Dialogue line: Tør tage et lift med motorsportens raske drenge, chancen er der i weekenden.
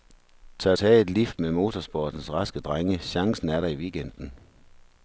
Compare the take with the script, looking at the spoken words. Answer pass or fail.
pass